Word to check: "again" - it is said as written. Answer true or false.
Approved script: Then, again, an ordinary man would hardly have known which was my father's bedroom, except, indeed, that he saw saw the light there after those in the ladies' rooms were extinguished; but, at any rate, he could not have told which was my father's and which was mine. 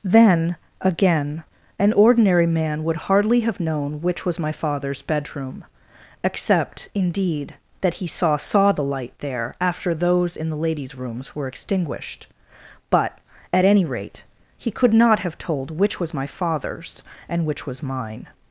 true